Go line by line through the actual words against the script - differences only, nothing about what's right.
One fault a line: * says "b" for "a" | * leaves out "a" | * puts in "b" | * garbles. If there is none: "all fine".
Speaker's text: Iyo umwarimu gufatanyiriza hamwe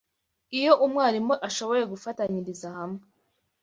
* puts in "ashoboye"